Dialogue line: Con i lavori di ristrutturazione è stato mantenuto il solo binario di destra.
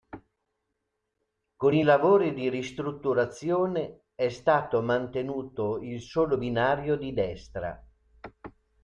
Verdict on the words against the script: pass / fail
pass